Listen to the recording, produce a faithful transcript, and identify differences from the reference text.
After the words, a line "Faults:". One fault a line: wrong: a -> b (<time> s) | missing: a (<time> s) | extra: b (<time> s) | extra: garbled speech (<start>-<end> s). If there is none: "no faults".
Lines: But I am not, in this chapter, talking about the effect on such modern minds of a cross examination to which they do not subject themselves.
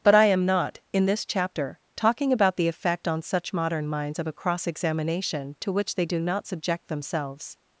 But I am not, in this chapter, talking about the effect on such modern minds of a cross examination to which they do not subject themselves.
Faults:
no faults